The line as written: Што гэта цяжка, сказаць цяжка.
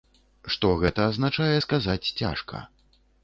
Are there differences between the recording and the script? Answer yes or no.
yes